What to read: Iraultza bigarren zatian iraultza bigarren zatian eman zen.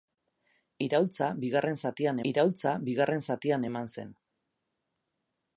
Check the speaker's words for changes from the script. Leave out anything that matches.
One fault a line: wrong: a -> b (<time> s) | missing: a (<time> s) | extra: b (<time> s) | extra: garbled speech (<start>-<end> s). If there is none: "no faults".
no faults